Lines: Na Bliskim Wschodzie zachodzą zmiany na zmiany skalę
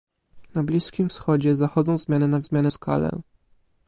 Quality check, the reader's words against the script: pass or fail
pass